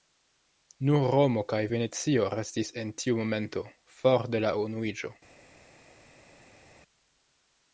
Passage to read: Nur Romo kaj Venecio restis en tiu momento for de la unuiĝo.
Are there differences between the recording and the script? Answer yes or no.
no